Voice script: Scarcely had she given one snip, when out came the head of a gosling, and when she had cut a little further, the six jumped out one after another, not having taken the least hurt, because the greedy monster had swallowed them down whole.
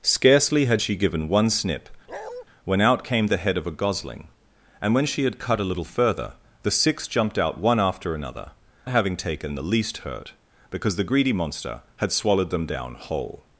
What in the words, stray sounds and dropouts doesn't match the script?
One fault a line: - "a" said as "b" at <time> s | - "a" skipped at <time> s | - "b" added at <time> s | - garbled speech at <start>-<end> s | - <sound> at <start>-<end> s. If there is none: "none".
- bark at 2.1-2.4 s
- "not" skipped at 8.5 s